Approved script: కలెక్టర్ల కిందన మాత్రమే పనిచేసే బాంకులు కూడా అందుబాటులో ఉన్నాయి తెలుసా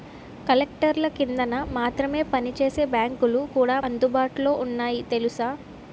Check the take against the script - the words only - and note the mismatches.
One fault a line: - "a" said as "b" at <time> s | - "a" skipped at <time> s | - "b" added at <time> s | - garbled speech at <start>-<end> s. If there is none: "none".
none